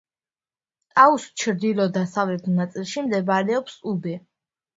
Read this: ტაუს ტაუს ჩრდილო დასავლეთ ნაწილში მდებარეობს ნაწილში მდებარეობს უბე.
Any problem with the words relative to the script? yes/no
yes